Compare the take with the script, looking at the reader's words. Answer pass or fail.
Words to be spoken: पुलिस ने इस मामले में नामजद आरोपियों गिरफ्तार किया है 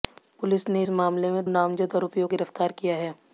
pass